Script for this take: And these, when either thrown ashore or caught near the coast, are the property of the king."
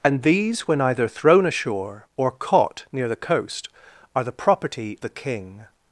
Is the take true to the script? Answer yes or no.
no